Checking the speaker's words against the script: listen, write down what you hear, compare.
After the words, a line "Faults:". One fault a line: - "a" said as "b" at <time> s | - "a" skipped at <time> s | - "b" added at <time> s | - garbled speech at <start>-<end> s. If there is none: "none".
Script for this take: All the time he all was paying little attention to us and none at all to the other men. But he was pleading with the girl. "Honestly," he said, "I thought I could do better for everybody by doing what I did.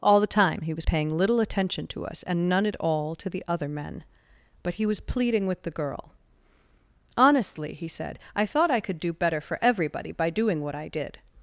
All the time he was paying little attention to us and none at all to the other men. But he was pleading with the girl. "Honestly," he said, "I thought I could do better for everybody by doing what I did.
Faults:
- "all" skipped at 0.7 s